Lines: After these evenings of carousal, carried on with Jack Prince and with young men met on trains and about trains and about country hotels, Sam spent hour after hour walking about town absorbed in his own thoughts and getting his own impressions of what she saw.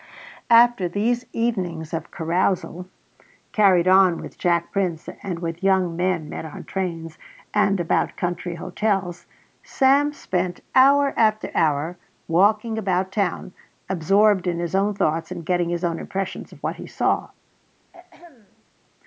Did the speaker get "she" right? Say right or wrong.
wrong